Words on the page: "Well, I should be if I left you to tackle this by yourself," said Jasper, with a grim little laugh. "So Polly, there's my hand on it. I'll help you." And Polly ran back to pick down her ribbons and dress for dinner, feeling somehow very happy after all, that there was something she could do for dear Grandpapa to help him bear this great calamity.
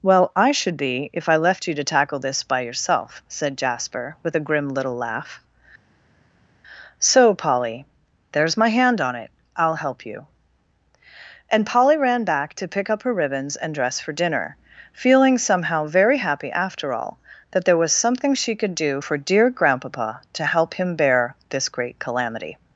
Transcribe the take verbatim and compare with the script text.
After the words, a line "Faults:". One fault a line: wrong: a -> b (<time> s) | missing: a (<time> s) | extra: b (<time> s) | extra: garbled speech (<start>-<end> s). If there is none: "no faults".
"Well, I should be if I left you to tackle this by yourself," said Jasper, with a grim little laugh. "So Polly, there's my hand on it. I'll help you." And Polly ran back to pick up her ribbons and dress for dinner, feeling somehow very happy after all, that there was something she could do for dear Grandpapa to help him bear this great calamity.
Faults:
wrong: down -> up (12.9 s)